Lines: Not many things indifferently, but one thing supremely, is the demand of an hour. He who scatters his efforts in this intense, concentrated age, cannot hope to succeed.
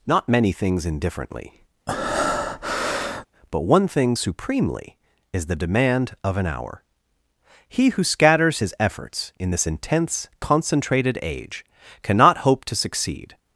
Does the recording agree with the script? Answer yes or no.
yes